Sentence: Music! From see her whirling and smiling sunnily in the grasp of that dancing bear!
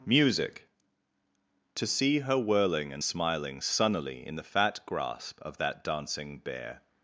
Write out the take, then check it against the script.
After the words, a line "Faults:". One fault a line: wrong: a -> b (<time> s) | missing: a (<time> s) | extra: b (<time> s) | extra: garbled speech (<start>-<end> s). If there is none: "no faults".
Music! To see her whirling and smiling sunnily in the fat grasp of that dancing bear!
Faults:
wrong: From -> To (1.8 s)
extra: fat (4.4 s)